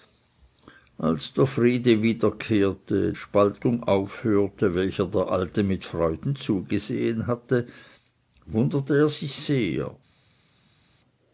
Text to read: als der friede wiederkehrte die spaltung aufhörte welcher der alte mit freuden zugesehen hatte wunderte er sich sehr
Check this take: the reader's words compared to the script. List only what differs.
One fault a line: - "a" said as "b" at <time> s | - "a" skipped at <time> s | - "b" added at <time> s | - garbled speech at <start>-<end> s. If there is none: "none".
- "die" skipped at 3.1 s